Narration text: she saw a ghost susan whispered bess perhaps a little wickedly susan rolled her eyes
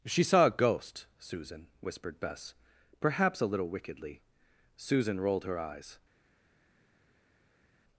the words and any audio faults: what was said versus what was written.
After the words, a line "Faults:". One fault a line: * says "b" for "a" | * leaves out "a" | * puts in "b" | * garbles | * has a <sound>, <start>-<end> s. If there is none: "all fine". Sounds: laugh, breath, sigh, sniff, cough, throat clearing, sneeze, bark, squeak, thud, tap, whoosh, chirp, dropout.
she saw a ghost susan whispered bess perhaps a little wickedly susan rolled her eyes
Faults:
all fine